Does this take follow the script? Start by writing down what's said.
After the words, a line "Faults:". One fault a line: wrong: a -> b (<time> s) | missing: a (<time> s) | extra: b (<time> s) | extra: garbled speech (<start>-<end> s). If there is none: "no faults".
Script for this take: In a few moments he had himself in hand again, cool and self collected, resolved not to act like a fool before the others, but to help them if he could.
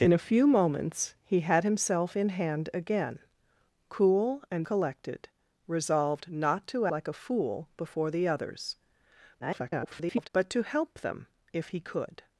In a few moments he had himself in hand again, cool and collected, resolved not to like a fool before the others, [garbled] but to help them if he could.
Faults:
missing: self (4.7 s)
missing: act (6.9 s)
extra: garbled speech (9.4-10.3 s)